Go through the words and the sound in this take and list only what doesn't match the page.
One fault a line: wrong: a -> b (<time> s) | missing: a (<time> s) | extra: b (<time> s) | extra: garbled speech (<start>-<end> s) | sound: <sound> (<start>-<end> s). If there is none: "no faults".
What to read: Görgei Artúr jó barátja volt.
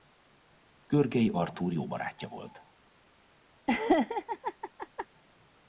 sound: laugh (3.7-5.1 s)